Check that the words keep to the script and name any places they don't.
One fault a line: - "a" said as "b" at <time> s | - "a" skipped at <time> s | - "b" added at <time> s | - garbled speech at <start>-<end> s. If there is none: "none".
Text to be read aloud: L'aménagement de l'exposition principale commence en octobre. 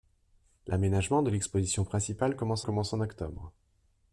- "commence" added at 2.6 s